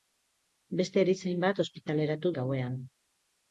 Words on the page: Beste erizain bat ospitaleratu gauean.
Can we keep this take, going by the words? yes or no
yes